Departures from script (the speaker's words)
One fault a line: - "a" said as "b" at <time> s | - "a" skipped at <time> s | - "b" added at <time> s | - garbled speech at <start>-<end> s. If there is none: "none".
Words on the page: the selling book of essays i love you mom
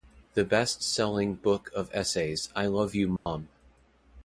- "best" added at 0.4 s